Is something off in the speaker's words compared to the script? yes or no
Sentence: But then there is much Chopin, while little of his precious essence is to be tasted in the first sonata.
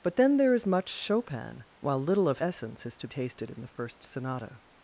yes